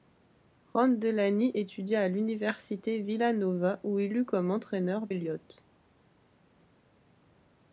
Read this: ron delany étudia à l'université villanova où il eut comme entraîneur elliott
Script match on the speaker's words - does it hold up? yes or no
yes